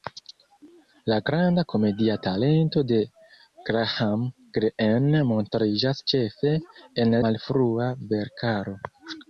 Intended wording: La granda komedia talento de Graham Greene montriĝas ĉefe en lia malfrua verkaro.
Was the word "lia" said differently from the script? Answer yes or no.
yes